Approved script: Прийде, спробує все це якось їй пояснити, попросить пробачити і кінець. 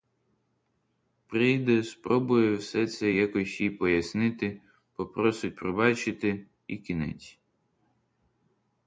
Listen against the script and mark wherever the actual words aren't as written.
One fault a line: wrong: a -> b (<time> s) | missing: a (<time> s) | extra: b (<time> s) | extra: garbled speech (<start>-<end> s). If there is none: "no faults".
no faults